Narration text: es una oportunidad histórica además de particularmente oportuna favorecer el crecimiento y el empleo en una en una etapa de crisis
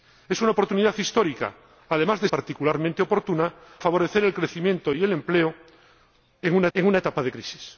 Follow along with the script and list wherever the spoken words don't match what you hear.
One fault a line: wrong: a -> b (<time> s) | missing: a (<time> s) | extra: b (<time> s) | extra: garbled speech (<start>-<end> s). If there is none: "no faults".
no faults